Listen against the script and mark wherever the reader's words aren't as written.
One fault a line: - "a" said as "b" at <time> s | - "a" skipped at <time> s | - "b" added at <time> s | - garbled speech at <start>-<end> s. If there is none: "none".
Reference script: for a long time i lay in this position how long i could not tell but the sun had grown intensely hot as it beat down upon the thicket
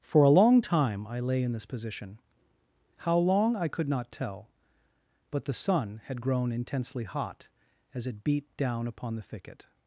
none